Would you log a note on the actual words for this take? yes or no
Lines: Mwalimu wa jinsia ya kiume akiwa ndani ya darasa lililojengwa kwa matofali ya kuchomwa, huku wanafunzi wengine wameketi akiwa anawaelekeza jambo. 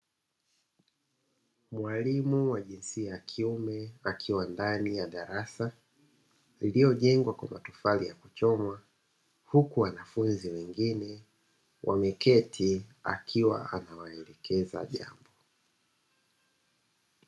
no